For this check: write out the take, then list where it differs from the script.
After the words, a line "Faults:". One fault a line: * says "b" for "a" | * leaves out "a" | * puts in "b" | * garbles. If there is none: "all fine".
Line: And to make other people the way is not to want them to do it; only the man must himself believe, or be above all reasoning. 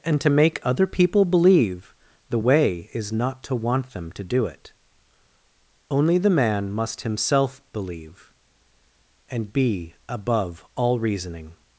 And to make other people believe, the way is not to want them to do it; only the man must himself believe, and be above all reasoning.
Faults:
* puts in "believe"
* says "and" for "or"